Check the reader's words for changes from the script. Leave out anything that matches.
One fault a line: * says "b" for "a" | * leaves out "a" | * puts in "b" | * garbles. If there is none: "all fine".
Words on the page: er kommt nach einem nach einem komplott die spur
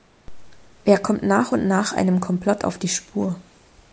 * says "und" for "einem"
* puts in "auf"